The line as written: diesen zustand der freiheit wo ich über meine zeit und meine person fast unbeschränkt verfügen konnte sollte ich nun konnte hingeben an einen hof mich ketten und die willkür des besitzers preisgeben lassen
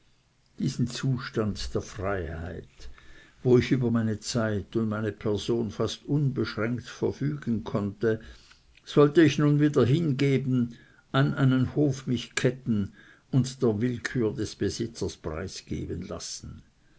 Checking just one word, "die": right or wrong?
wrong